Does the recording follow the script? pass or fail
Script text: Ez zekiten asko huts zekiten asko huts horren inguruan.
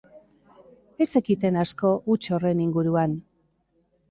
fail